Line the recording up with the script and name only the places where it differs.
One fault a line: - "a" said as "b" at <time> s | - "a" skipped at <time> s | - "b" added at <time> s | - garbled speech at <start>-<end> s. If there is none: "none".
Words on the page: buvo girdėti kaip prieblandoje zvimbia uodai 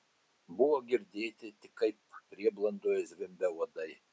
- "tik" added at 1.6 s